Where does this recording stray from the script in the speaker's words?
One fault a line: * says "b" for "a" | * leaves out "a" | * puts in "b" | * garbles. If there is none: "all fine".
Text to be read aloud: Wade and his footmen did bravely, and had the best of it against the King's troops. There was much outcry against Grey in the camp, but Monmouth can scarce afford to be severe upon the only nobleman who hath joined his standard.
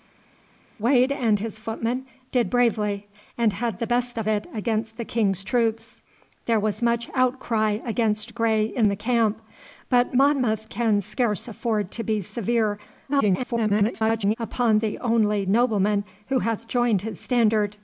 * garbles